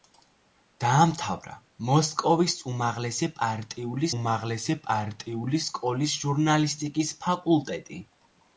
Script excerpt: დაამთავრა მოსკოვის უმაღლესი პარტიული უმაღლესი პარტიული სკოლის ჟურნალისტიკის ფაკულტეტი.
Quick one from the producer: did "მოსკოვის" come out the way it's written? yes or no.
yes